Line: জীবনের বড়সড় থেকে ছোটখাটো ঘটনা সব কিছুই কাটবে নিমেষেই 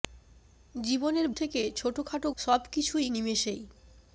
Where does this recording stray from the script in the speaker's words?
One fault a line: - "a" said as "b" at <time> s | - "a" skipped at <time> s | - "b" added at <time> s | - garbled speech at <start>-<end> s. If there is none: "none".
- "বড়সড়" skipped at 1.3 s
- "ঘটনা" skipped at 2.3 s
- "কাটবে" skipped at 3.1 s